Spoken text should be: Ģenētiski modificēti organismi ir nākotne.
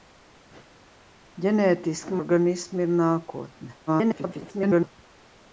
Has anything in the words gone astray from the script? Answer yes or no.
yes